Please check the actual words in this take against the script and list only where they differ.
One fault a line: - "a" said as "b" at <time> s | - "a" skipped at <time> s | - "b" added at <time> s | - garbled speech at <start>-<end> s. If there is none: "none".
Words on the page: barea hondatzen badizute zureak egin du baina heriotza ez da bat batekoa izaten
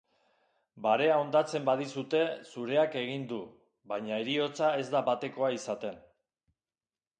- "bat" skipped at 5.0 s